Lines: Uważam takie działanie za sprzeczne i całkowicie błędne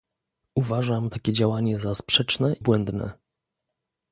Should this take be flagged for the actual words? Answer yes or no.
yes